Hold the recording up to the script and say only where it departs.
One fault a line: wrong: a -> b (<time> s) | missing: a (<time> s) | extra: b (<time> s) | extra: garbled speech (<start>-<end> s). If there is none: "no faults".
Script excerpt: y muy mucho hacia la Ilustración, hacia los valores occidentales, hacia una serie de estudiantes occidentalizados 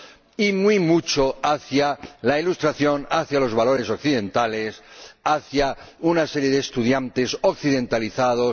no faults